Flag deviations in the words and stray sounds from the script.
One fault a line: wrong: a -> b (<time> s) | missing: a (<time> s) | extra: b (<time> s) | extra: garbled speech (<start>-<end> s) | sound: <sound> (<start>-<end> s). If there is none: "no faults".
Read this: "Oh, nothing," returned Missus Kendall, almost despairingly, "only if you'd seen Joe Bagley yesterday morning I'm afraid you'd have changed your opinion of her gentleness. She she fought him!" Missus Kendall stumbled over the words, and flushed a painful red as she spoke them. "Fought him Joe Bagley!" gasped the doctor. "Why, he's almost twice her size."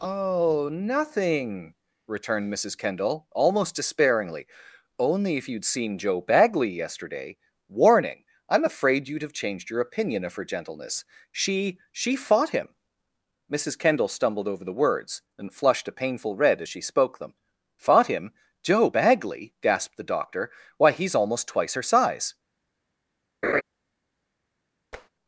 wrong: morning -> warning (7.7 s)
sound: laugh (23.4-23.6 s)
sound: tap (24.9-25.1 s)